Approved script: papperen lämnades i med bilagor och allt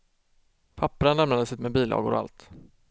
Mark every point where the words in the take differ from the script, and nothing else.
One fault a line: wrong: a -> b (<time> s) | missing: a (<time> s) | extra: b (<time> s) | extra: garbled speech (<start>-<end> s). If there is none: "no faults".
no faults